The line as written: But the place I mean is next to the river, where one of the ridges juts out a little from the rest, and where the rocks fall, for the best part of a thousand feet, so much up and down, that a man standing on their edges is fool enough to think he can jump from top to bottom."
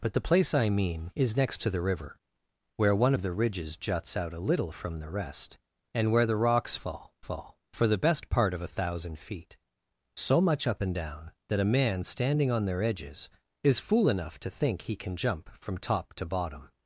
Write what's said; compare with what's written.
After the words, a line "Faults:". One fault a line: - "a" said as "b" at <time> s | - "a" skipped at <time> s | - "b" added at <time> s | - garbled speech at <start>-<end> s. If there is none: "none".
But the place I mean is next to the river, where one of the ridges juts out a little from the rest, and where the rocks fall fall, for the best part of a thousand feet, so much up and down, that a man standing on their edges is fool enough to think he can jump from top to bottom."
Faults:
- "fall" added at 7.2 s